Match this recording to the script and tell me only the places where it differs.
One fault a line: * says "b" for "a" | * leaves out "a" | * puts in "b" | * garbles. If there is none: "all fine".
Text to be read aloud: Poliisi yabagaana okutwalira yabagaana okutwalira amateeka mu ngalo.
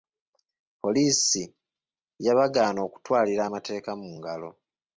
* leaves out "yabagaana okutwalira"